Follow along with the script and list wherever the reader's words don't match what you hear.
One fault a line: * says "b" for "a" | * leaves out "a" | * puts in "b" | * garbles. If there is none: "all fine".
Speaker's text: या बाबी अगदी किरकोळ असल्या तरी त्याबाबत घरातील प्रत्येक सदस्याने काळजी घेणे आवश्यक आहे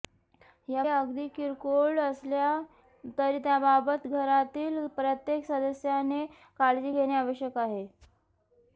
* leaves out "बाबी"